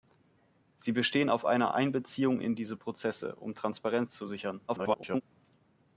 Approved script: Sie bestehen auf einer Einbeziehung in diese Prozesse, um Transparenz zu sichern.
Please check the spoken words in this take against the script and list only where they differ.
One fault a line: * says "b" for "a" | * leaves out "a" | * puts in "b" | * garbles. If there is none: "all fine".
* garbles